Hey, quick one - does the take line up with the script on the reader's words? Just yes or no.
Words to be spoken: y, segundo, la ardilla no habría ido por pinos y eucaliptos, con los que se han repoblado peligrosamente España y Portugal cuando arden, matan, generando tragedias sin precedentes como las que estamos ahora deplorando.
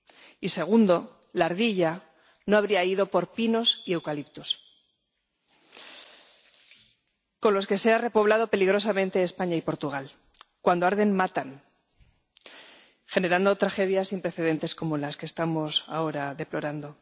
yes